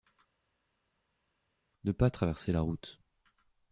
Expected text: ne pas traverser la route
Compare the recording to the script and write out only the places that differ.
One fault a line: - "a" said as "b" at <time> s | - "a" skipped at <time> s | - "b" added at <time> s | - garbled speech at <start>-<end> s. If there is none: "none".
none